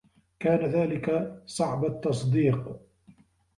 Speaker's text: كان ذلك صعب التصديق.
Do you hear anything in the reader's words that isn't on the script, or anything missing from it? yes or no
no